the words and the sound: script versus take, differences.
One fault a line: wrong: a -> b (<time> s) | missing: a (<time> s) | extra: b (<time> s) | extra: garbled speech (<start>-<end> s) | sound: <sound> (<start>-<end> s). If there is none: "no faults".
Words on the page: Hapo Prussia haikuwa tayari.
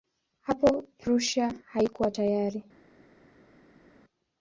no faults